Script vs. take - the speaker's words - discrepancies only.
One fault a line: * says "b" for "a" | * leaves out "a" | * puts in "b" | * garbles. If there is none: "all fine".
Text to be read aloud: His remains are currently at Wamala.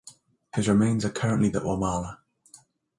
all fine